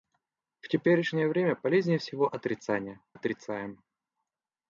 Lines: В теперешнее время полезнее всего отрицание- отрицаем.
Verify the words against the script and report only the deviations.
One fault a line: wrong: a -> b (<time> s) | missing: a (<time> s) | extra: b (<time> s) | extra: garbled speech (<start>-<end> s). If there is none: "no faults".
no faults